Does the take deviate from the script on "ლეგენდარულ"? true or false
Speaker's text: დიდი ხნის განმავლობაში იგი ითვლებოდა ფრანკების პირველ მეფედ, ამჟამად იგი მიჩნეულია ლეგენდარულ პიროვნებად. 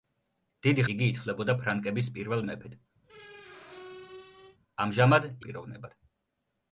true